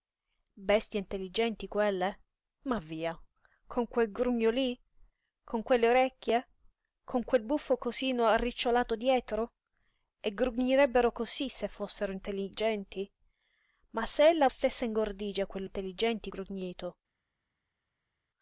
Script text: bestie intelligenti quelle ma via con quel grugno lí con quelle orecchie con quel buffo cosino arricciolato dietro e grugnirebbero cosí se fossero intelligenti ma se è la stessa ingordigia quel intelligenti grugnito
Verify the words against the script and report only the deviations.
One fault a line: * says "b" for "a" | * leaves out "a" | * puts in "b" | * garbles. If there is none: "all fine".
all fine